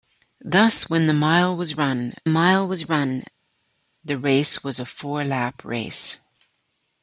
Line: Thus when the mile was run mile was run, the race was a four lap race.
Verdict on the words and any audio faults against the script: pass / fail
pass